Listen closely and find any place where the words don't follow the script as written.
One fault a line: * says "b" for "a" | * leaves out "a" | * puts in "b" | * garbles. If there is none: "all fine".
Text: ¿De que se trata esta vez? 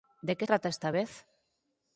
* leaves out "se"